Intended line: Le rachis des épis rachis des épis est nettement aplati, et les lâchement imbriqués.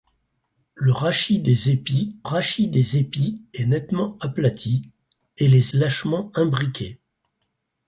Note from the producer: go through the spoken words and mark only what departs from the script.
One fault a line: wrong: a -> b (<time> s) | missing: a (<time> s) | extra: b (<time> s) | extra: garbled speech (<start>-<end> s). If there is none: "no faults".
no faults